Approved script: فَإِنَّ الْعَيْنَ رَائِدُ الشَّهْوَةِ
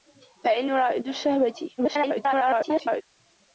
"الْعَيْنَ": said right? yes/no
no